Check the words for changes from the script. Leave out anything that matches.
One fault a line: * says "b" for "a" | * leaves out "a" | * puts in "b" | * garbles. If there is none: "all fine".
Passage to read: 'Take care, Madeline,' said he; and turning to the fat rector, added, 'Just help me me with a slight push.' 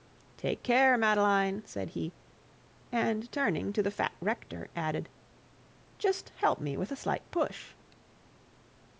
* leaves out "me"